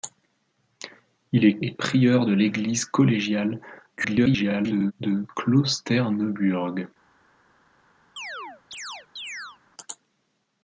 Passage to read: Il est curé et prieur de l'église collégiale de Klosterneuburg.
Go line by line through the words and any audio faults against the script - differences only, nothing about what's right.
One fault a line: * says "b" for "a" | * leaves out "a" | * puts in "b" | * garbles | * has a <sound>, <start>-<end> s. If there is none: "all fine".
* leaves out "curé"
* garbles
* has a chirp, 8.2-9.6 s